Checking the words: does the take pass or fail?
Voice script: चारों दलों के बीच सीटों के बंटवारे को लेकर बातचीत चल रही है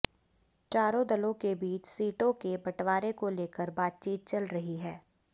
pass